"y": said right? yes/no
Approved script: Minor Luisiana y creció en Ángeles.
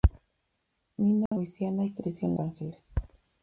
yes